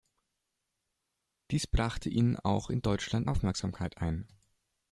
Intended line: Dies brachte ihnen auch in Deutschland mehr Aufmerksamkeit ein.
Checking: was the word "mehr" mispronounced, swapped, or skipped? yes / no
yes